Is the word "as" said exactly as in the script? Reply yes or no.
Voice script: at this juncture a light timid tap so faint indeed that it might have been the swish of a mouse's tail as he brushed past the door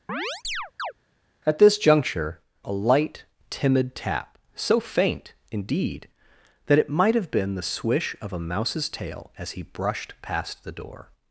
yes